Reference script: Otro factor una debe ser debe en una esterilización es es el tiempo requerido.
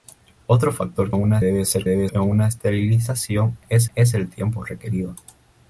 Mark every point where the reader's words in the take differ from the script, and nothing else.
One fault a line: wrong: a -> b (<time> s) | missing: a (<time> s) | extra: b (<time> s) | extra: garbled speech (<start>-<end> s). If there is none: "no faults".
no faults